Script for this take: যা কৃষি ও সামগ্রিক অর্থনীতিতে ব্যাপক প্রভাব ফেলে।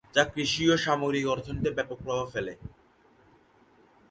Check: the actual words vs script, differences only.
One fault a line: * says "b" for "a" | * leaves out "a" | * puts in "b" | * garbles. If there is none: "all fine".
all fine